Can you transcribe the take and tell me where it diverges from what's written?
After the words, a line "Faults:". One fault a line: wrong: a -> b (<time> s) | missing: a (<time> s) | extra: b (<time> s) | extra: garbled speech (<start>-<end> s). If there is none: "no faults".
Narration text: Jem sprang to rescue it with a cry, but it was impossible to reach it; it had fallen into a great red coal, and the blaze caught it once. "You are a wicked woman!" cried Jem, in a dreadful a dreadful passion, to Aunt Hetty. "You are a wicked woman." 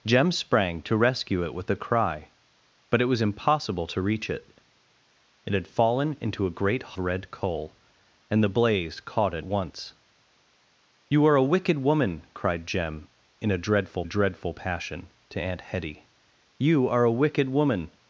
Jem sprang to rescue it with a cry, but it was impossible to reach it; it had fallen into a great red coal, and the blaze caught it once. "You are a wicked woman!" cried Jem, in a dreadful a dreadful passion, to Aunt Hetty. "You are a wicked woman."
Faults:
no faults